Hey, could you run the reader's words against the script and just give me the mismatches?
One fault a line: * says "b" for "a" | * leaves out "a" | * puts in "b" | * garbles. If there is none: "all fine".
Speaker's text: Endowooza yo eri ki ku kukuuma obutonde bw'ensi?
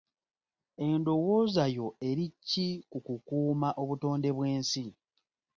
all fine